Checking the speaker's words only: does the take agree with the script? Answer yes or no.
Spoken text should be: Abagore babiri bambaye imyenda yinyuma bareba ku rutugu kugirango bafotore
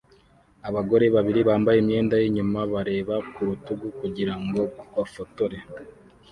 yes